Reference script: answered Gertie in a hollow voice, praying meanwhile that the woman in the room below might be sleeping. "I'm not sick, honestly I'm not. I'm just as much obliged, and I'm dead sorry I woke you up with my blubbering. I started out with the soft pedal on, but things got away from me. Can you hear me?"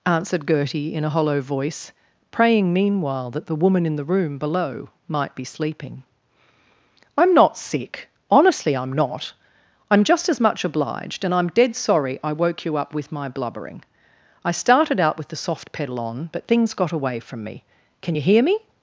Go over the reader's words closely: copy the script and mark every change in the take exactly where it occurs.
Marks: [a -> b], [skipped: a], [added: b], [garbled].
answered Gertie in a hollow voice, praying meanwhile that the woman in the room below might be sleeping. "I'm not sick, honestly I'm not. I'm just as much obliged, and I'm dead sorry I woke you up with my blubbering. I started out with the soft pedal on, but things got away from me. Can you hear me?"